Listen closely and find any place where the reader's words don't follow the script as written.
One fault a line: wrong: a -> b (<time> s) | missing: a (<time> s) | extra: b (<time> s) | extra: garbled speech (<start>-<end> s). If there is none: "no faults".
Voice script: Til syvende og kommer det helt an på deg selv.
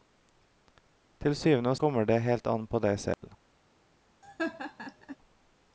no faults